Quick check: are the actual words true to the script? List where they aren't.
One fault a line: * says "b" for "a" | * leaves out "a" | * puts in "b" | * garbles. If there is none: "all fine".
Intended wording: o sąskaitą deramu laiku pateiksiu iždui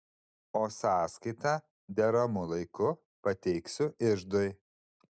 all fine